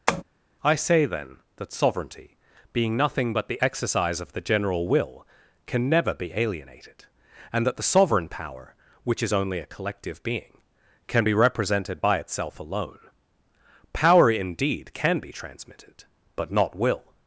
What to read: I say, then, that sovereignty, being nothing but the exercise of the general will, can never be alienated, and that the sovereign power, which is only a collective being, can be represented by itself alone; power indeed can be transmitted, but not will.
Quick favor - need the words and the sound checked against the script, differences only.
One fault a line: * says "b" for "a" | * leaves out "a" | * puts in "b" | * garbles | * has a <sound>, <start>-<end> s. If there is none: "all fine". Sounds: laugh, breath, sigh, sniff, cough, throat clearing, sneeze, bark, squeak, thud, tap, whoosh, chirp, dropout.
* has a tap, 0.1-0.2 s